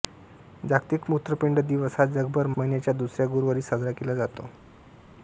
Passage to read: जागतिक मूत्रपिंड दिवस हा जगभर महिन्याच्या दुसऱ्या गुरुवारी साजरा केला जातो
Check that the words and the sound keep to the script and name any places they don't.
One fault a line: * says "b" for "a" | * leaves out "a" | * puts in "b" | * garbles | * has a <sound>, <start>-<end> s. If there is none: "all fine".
all fine